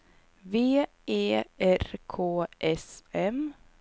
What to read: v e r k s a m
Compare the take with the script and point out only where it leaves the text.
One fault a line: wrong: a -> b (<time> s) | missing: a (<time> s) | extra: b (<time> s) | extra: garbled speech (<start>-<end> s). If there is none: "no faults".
missing: a (3.0 s)